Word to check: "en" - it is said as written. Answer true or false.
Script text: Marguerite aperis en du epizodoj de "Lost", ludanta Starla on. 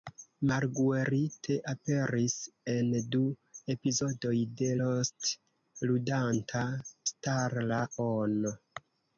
true